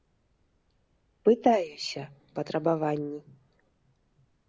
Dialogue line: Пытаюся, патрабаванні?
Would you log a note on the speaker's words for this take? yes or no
no